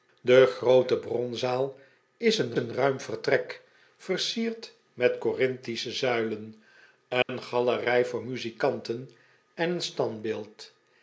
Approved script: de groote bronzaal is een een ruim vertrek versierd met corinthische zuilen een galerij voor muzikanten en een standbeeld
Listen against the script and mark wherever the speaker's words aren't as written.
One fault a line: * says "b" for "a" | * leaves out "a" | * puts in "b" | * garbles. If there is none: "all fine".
all fine